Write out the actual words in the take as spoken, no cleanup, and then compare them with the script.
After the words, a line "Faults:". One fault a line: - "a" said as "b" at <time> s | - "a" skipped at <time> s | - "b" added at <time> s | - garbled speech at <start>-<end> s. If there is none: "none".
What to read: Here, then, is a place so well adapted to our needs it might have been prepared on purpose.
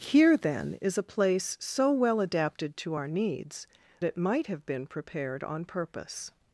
Here, then, is a place so well adapted to our needs it might have been prepared on purpose.
Faults:
none